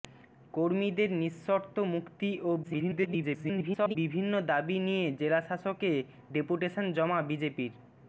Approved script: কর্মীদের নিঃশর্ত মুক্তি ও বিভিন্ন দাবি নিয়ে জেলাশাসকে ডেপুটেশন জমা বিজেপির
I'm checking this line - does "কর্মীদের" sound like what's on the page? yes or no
yes